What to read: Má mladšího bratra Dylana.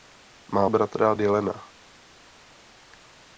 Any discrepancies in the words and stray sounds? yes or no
yes